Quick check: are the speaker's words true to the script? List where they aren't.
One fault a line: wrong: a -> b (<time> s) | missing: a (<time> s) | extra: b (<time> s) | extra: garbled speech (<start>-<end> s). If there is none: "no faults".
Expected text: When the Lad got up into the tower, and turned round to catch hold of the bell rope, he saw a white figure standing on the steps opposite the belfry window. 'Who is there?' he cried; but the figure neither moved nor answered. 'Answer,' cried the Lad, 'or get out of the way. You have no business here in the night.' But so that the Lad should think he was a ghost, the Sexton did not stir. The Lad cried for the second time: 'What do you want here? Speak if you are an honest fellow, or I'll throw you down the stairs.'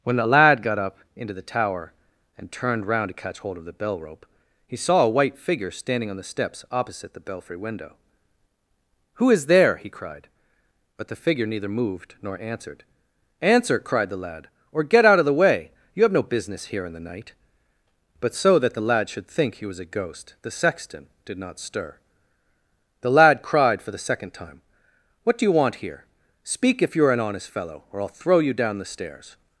no faults